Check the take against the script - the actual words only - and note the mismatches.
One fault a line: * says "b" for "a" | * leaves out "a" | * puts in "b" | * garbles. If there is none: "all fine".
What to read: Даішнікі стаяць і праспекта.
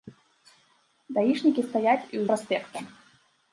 all fine